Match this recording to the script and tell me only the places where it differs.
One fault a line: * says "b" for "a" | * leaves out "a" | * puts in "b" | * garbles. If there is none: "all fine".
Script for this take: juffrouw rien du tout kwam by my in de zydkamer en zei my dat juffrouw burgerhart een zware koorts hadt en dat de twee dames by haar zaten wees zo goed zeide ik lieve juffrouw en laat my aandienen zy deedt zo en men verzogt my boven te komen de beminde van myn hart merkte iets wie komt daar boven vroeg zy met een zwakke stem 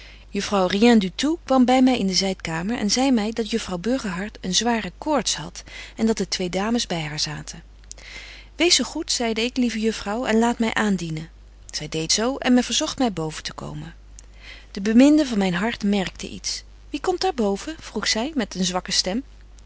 all fine